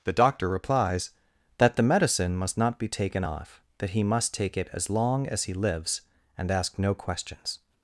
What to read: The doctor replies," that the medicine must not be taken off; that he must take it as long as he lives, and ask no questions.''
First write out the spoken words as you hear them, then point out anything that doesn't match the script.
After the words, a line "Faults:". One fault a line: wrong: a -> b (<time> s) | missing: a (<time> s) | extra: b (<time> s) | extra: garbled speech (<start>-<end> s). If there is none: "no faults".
The doctor replies," that the medicine must not be taken off; that he must take it as long as he lives, and ask no questions.''
Faults:
no faults